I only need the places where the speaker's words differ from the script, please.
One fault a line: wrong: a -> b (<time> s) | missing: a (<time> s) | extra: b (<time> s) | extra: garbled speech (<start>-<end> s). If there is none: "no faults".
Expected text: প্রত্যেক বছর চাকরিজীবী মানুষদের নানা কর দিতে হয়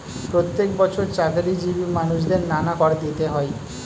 no faults